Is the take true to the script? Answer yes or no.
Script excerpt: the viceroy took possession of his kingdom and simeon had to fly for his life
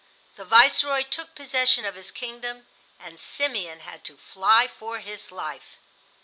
yes